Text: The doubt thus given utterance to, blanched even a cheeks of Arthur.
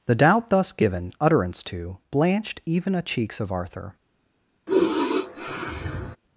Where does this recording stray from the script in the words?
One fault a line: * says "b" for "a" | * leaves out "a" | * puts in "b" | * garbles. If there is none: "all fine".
all fine